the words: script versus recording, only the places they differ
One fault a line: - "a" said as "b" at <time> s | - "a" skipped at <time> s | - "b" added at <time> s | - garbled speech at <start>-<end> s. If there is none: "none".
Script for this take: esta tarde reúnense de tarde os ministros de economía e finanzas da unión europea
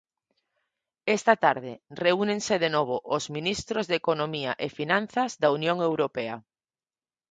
- "tarde" said as "novo" at 2.8 s